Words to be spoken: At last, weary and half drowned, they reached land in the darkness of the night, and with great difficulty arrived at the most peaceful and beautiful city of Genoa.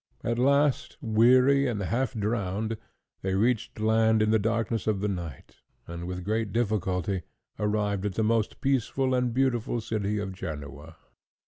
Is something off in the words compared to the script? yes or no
no